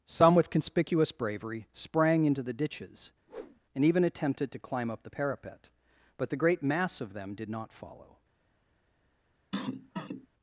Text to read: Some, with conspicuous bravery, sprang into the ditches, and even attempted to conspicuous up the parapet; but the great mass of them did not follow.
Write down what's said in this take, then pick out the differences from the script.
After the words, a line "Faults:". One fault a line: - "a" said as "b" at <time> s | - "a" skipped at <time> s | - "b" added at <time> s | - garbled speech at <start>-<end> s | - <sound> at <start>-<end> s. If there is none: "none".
Some, with conspicuous bravery, sprang into the ditches, and even attempted to climb up the parapet; but the great mass of them did not follow.
Faults:
- whoosh at 3.3-3.6 s
- "conspicuous" said as "climb" at 4.6 s
- cough at 9.5-10.3 s